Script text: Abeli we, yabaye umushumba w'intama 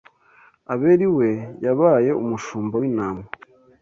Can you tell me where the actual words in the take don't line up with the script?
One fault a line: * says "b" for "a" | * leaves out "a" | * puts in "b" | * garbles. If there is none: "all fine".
all fine